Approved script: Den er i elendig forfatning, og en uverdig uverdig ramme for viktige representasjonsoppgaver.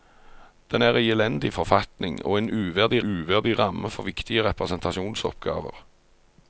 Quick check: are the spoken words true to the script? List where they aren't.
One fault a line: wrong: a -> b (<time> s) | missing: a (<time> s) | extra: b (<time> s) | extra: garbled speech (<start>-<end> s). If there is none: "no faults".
no faults